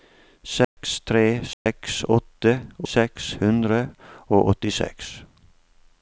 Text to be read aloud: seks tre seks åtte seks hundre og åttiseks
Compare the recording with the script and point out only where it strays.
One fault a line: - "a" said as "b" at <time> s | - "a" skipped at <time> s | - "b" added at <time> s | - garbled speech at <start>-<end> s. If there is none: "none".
none